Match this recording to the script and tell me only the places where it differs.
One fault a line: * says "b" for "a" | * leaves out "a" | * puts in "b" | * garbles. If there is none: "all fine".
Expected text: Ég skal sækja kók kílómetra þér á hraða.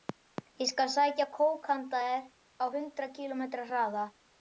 * says "handa" for "kílómetra"
* puts in "hundrað kílómetra"